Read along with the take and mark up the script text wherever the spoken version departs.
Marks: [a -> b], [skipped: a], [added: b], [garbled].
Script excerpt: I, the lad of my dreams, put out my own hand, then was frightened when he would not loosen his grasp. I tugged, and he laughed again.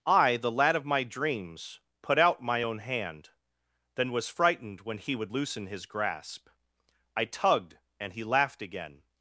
I, the lad of my dreams, put out my own hand, then was frightened when he would [skipped: not] loosen his grasp. I tugged, and he laughed again.